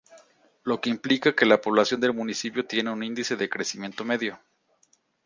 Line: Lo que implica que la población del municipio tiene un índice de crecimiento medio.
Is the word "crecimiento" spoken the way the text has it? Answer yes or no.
yes